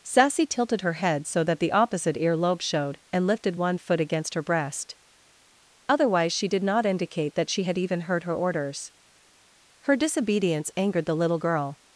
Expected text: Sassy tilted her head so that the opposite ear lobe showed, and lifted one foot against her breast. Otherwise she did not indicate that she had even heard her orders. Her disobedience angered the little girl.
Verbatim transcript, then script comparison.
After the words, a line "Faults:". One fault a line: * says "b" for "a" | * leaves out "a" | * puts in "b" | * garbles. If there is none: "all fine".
Sassy tilted her head so that the opposite ear lobe showed, and lifted one foot against her breast. Otherwise she did not indicate that she had even heard her orders. Her disobedience angered the little girl.
Faults:
all fine